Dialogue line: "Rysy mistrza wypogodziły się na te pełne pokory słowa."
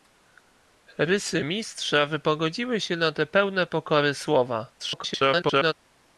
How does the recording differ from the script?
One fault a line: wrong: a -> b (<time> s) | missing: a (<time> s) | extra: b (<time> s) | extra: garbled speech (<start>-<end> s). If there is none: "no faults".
extra: garbled speech (4.8-5.7 s)